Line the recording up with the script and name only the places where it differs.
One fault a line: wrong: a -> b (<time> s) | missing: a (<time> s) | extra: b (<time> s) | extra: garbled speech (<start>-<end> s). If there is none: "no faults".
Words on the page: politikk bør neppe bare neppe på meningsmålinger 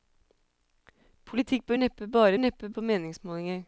no faults